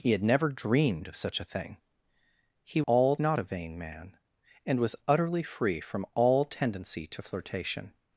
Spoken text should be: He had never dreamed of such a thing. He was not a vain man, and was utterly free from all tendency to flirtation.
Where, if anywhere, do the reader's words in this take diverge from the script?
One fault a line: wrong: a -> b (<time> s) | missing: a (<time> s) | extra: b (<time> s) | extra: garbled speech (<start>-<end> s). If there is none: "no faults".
wrong: was -> all (2.9 s)